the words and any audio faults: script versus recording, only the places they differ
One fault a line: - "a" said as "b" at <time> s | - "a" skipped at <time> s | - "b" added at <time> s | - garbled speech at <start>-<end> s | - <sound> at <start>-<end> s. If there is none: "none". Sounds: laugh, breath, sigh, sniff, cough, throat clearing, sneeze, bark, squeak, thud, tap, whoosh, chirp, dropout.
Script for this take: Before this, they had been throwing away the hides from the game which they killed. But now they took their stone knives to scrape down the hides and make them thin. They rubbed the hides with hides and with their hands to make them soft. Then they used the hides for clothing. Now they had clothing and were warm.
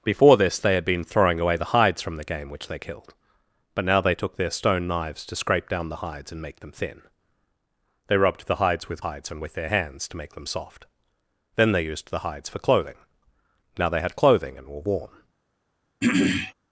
- throat clearing at 16.0-16.5 s